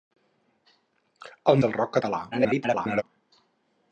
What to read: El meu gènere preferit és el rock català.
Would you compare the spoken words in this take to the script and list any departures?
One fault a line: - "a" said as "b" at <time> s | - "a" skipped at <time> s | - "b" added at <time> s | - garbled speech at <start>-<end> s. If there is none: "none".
- "meu gènere preferit" skipped at 1.6 s
- garbled speech at 2.3-3.0 s